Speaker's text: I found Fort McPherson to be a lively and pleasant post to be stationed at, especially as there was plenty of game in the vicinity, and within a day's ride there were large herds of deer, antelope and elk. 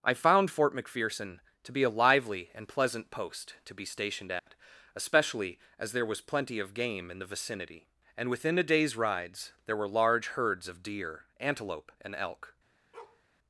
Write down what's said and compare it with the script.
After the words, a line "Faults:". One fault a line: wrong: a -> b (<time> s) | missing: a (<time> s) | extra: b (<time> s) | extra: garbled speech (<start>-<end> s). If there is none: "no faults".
I found Fort McPherson to be a lively and pleasant post to be stationed at, especially as there was plenty of game in the vicinity, and within a day's rides there were large herds of deer, antelope and elk.
Faults:
wrong: ride -> rides (8.9 s)